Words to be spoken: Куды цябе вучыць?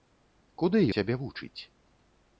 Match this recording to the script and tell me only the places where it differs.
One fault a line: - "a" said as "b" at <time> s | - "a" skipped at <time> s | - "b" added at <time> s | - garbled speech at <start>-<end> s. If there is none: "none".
none